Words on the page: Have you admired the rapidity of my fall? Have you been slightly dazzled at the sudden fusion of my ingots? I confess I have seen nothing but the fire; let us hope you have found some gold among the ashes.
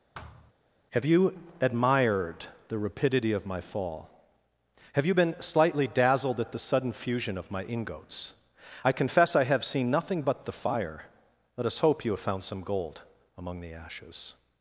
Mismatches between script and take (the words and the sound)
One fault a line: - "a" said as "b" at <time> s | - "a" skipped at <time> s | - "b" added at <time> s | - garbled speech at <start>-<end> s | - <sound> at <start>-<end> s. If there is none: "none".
- thud at 0.1-0.5 s